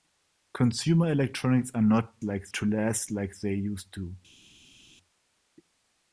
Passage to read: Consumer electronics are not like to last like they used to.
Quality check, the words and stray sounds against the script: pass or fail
pass